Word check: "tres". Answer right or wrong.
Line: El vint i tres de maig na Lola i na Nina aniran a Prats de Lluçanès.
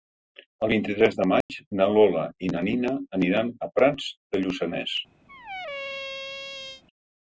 right